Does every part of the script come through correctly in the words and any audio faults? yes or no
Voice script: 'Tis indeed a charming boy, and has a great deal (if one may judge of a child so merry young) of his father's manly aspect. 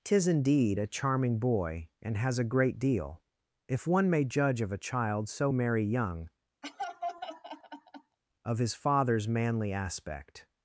no